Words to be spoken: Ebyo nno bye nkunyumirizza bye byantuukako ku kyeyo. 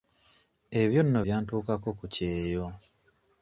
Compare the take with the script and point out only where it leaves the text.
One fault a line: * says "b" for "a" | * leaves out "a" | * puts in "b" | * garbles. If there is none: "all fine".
* leaves out "bye nkunyumirizza bye"